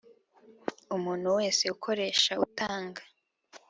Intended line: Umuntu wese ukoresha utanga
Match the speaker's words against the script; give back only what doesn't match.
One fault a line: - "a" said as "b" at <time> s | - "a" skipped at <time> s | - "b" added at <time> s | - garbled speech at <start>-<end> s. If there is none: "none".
none